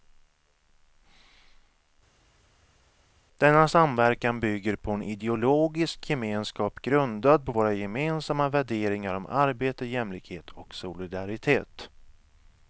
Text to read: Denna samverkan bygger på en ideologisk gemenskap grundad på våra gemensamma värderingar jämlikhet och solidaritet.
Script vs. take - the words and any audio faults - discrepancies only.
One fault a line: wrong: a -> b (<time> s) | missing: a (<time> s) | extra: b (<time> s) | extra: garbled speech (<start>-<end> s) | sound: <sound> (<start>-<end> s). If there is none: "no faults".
extra: om arbete (9.1 s)